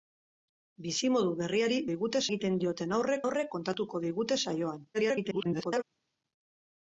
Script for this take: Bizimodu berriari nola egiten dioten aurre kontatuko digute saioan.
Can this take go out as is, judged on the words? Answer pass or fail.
fail